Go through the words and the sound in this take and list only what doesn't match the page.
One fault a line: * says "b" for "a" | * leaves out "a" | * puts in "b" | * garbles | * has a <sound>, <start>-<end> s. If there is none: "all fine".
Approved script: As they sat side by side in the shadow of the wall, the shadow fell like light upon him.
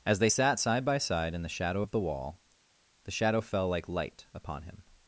all fine